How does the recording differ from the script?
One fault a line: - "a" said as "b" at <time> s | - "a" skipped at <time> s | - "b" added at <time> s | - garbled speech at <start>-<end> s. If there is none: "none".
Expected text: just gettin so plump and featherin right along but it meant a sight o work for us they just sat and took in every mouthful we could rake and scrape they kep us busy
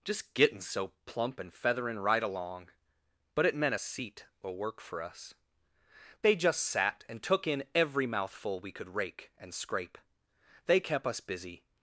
- "sight" said as "seat" at 3.8 s